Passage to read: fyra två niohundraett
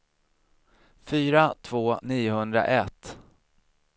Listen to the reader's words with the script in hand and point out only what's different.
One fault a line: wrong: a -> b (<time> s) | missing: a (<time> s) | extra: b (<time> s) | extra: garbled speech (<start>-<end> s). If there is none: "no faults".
no faults